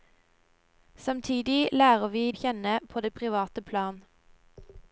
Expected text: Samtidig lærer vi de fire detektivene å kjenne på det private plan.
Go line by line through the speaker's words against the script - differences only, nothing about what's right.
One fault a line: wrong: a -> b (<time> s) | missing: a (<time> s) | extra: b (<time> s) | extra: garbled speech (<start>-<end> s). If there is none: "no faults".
missing: de fire detektivene (2.3 s)